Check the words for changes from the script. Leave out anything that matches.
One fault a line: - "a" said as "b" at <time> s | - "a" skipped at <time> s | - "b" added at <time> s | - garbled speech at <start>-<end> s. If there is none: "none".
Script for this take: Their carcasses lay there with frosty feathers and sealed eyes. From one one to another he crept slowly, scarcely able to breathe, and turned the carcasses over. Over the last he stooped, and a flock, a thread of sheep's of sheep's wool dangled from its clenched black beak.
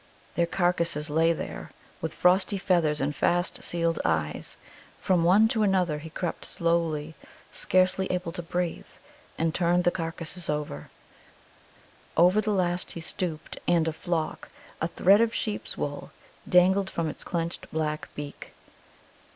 - "fast" added at 3.1 s
- "one" skipped at 5.5 s
- "of sheep's" skipped at 15.8 s